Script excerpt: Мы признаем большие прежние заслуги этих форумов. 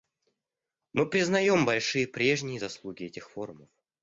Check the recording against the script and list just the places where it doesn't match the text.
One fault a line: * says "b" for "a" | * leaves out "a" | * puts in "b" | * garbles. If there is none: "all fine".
all fine